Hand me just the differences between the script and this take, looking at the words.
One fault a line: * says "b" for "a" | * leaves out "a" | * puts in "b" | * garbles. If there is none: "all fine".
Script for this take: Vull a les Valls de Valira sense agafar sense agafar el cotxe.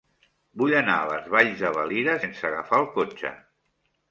* puts in "anar"
* leaves out "sense agafar"